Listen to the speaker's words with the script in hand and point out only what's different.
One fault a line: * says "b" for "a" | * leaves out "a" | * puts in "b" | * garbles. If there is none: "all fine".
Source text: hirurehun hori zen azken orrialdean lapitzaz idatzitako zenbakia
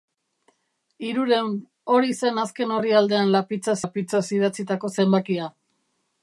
* puts in "lapitzaz"